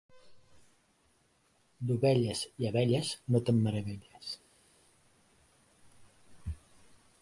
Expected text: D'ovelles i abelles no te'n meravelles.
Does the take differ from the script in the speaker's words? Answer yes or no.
no